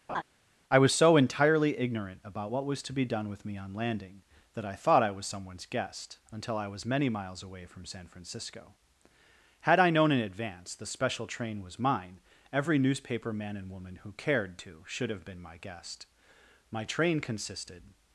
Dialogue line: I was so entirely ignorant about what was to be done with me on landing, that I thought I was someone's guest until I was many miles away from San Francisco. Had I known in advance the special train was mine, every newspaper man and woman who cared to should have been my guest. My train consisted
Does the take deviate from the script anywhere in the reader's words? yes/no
no